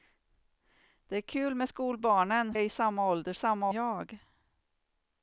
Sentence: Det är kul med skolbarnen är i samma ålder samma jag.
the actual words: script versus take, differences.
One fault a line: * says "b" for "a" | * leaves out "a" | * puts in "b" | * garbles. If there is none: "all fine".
all fine